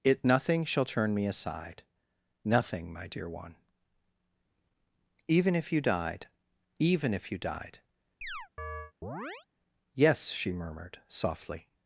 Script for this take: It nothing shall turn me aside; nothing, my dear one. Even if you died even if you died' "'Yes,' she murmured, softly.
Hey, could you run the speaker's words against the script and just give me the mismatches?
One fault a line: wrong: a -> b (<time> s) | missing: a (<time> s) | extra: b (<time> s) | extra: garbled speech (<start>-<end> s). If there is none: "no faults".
no faults